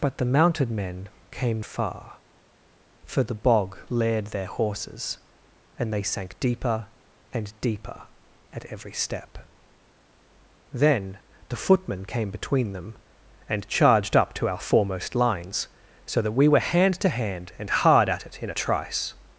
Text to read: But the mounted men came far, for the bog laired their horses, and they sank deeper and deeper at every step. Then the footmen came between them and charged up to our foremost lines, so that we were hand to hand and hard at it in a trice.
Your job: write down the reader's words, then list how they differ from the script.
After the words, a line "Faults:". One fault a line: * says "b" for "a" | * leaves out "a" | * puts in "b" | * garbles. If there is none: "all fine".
But the mounted men came far, for the bog laired their horses, and they sank deeper and deeper at every step. Then the footmen came between them and charged up to our foremost lines, so that we were hand to hand and hard at it in a trice.
Faults:
all fine